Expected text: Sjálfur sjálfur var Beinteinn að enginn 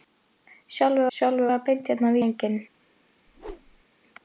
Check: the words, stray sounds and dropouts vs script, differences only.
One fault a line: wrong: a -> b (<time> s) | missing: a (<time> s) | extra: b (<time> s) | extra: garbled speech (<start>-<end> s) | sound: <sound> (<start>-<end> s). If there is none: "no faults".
sound: whoosh (3.3-3.8 s)